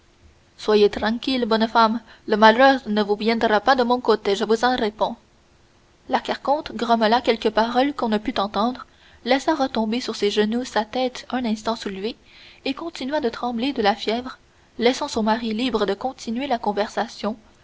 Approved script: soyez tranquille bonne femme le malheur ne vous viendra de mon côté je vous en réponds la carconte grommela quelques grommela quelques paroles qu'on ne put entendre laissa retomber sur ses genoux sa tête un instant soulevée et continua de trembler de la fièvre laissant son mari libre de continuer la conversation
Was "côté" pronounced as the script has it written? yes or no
yes